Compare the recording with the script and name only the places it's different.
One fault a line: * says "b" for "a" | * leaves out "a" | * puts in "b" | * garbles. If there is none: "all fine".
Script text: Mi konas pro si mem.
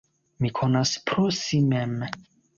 all fine